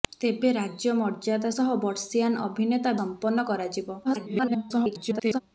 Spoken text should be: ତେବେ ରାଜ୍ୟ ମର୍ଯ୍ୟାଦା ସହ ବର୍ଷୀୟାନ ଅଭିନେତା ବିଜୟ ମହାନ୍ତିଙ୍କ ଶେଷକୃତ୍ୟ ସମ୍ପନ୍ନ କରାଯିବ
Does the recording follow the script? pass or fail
fail